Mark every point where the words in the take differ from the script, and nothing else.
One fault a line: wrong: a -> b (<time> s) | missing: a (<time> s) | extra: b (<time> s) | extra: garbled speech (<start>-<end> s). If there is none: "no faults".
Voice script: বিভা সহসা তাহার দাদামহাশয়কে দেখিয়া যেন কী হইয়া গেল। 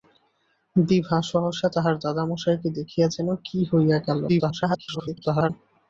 extra: garbled speech (4.3-5.5 s)